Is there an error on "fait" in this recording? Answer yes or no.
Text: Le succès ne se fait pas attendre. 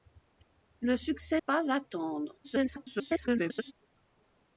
yes